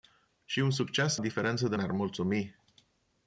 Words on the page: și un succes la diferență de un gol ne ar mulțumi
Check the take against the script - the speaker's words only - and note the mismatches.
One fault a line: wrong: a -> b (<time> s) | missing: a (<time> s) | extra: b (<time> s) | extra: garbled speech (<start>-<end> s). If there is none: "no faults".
missing: la (1.2 s)
missing: un gol (1.8 s)